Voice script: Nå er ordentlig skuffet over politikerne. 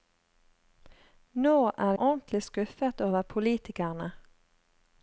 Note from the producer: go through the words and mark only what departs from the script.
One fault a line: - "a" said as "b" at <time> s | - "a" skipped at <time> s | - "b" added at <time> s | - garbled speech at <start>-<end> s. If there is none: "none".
none